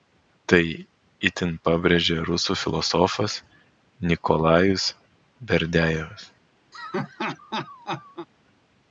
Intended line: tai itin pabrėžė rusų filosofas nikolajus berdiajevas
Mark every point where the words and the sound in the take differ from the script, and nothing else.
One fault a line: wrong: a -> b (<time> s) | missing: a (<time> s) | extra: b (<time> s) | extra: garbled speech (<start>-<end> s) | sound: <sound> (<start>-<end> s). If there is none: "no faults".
sound: laugh (6.7-8.3 s)